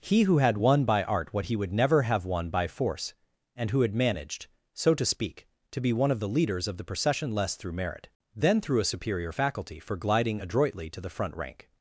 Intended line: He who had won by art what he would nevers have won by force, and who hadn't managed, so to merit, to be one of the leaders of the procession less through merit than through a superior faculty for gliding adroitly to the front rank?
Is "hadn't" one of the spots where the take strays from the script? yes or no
yes